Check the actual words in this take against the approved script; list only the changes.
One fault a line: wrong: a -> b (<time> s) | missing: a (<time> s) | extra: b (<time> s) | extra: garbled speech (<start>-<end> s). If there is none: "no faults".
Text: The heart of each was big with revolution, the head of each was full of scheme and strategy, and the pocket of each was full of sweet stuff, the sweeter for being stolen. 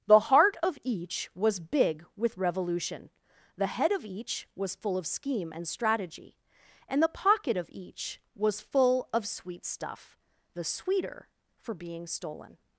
no faults